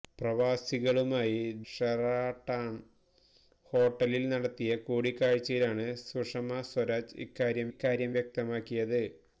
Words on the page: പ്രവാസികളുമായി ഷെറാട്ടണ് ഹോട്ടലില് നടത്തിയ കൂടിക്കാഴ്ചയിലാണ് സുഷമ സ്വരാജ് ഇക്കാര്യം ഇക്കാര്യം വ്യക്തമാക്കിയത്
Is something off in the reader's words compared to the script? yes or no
no